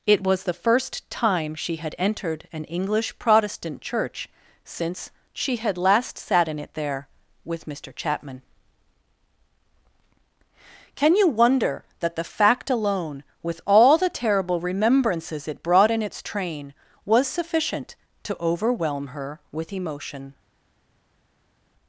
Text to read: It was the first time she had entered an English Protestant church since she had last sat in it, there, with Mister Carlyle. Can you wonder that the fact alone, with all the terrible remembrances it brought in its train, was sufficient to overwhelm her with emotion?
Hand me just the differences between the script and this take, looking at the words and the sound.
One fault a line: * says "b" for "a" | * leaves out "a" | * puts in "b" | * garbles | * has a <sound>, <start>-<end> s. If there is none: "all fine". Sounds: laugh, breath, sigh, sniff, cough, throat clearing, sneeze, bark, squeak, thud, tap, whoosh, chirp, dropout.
* says "Chapman" for "Carlyle"